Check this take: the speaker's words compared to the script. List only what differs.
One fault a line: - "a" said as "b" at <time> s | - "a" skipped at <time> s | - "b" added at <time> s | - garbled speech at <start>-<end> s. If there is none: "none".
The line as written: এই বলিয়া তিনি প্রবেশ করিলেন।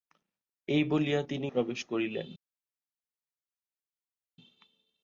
none